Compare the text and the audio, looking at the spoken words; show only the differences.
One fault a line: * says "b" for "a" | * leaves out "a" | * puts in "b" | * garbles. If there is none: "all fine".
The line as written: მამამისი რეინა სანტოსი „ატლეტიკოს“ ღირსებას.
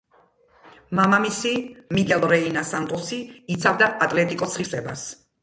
* puts in "მიგელ"
* puts in "იცავდა"